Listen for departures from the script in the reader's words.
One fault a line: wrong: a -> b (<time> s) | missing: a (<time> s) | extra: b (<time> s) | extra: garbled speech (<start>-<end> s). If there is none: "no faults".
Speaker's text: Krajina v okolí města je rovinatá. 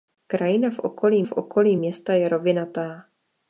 extra: v okolí (1.2 s)